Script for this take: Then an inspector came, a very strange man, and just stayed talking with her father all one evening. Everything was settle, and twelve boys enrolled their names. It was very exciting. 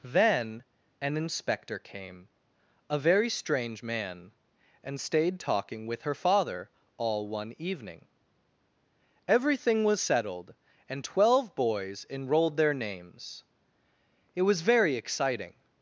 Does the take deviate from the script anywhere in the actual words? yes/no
yes